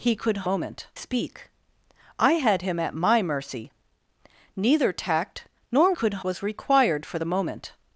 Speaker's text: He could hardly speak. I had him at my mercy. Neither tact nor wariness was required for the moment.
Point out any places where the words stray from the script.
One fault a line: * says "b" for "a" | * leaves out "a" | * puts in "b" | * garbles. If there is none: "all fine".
* says "moment" for "hardly"
* says "could" for "wariness"